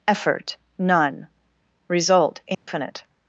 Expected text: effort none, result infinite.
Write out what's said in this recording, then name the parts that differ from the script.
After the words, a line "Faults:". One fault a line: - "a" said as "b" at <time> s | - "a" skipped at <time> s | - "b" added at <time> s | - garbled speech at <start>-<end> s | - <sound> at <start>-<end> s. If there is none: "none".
effort none, result infinite.
Faults:
- dropout at 2.5-2.7 s